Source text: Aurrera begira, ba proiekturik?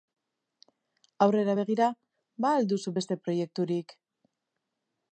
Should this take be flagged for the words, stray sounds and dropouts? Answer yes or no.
yes